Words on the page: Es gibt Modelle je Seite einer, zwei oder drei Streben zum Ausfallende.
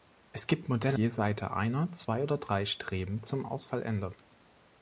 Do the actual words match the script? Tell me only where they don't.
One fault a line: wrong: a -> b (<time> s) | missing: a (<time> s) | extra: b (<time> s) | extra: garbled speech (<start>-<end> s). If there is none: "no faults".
no faults